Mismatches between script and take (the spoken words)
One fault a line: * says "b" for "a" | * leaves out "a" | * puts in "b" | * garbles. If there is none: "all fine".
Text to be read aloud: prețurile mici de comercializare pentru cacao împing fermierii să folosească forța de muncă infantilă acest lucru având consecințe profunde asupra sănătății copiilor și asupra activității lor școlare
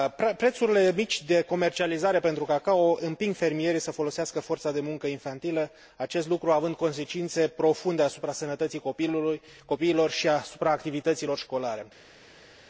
all fine